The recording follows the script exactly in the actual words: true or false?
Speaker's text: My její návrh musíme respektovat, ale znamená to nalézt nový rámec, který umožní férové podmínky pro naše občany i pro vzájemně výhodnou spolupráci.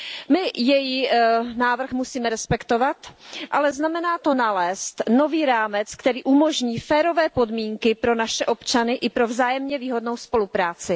true